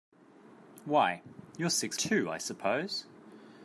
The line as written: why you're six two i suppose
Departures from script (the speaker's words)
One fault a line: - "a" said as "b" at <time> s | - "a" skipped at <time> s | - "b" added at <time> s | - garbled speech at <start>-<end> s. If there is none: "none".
none